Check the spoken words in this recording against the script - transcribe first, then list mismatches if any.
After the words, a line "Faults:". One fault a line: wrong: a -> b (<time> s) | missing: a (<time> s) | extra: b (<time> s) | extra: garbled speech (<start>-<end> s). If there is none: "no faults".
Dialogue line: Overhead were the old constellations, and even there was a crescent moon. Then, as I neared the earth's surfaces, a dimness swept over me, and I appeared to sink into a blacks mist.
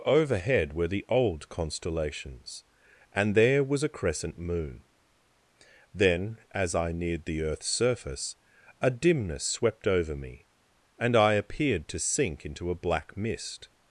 Overhead were the old constellations, and there was a crescent moon. Then, as I neared the earth's surface, a dimness swept over me, and I appeared to sink into a black mist.
Faults:
missing: even (3.4 s)
wrong: surfaces -> surface (7.7 s)
wrong: blacks -> black (12.8 s)